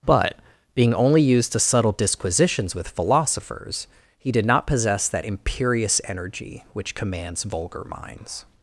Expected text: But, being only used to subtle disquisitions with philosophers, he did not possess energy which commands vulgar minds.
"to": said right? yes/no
yes